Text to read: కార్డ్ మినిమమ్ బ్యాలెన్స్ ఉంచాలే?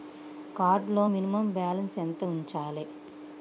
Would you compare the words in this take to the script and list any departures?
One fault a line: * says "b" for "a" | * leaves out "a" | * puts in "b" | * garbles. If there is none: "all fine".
* puts in "లో"
* puts in "ఎంత"